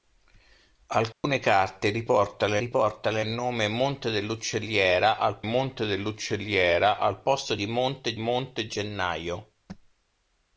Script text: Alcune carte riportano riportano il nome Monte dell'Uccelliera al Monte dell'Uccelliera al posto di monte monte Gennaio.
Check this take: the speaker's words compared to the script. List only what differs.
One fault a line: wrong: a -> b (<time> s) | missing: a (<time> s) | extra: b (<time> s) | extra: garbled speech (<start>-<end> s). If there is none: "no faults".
no faults